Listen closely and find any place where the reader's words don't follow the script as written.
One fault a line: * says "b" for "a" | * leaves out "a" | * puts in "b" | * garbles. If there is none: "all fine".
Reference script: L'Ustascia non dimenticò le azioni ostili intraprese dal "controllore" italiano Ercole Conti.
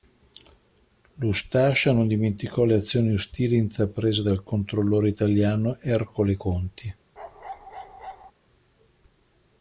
all fine